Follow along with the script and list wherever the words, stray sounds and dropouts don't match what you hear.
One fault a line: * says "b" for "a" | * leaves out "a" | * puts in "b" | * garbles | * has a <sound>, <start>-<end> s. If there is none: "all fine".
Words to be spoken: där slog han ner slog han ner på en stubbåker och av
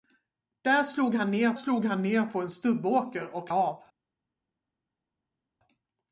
all fine